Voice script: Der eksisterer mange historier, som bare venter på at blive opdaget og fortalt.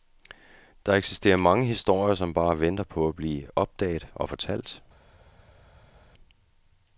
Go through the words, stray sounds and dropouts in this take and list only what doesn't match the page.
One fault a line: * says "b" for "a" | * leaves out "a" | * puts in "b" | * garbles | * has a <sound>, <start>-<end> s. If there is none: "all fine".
all fine